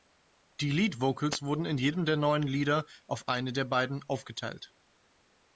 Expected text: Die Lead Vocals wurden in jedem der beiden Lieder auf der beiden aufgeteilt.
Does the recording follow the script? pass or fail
fail